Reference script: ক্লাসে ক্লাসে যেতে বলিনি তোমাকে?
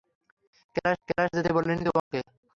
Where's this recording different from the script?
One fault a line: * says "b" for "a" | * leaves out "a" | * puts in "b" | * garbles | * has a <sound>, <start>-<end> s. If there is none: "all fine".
* has a dropout, 2.0-2.1 s